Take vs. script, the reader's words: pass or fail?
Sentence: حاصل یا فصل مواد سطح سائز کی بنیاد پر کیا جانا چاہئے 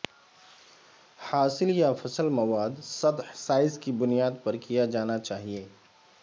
pass